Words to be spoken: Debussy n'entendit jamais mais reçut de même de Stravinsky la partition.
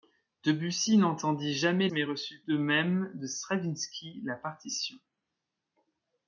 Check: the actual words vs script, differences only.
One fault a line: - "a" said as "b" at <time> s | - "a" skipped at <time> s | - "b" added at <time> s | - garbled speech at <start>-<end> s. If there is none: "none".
none